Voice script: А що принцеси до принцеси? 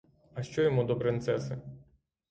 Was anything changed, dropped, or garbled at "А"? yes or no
no